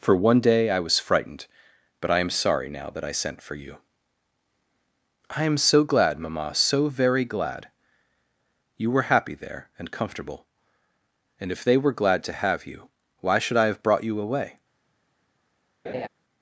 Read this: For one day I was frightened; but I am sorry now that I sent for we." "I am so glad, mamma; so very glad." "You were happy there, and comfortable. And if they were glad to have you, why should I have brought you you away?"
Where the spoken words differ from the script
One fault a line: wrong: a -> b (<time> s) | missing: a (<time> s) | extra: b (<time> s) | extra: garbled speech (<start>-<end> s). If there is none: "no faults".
wrong: we -> you (3.5 s)
missing: you (14.2 s)